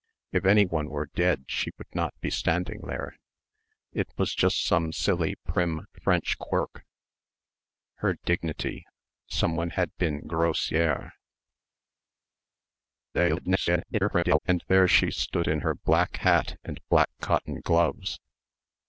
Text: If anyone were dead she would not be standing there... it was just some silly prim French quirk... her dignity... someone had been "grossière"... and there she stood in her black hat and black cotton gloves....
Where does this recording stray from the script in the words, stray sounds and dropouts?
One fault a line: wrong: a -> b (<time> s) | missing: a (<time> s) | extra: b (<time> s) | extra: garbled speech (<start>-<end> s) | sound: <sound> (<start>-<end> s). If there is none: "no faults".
extra: garbled speech (13.1-14.4 s)